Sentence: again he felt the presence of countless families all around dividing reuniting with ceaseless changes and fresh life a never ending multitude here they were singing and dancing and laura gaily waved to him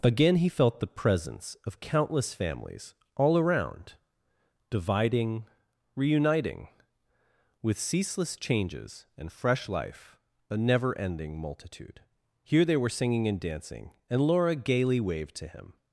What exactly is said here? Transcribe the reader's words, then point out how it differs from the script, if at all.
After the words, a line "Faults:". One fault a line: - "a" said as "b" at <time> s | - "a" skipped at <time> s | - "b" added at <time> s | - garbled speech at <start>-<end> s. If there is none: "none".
again he felt the presence of countless families all around dividing reuniting with ceaseless changes and fresh life a never ending multitude here they were singing and dancing and laura gaily waved to him
Faults:
none